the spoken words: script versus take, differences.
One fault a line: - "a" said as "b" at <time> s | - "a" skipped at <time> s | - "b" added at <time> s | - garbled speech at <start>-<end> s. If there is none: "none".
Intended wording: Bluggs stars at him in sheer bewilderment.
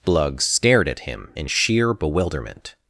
- "stars" said as "stared" at 0.4 s